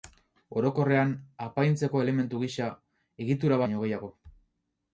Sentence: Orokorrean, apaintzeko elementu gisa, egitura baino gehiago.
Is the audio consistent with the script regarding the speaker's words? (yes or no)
yes